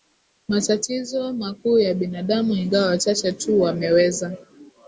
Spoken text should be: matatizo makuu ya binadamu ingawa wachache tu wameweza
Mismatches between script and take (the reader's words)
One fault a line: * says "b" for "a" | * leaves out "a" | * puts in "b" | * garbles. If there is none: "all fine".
all fine